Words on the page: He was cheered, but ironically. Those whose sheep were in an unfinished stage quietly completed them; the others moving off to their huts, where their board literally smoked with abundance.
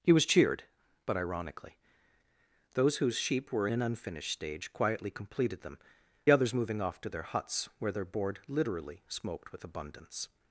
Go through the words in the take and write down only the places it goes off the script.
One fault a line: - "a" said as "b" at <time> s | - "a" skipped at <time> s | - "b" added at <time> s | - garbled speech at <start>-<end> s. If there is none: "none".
- "in" skipped at 3.7 s
- "the" skipped at 5.8 s